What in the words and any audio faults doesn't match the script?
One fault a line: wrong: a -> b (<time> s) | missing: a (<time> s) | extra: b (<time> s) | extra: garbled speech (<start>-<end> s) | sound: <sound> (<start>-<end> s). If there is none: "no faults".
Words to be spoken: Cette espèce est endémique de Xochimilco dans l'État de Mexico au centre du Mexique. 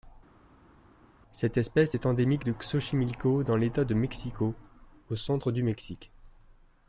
no faults